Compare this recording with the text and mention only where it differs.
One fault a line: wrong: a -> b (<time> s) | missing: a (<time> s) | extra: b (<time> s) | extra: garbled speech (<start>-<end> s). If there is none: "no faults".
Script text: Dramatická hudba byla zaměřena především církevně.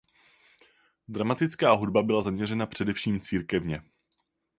no faults